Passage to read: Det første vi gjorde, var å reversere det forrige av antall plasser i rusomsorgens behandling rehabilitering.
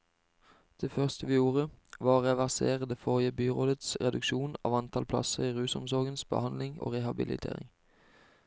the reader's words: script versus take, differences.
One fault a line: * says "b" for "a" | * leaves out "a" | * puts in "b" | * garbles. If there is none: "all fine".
* puts in "byrådets reduksjon"
* puts in "og"